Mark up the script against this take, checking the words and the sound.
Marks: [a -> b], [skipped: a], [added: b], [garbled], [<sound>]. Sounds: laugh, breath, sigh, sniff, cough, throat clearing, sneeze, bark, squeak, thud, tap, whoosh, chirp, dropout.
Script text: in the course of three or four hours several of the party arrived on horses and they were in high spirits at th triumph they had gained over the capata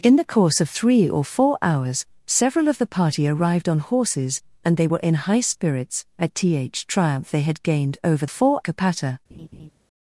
in the course of three or four hours several of the party arrived on horses and they were in high spirits at th triumph they had gained over [the -> four] capata [laugh]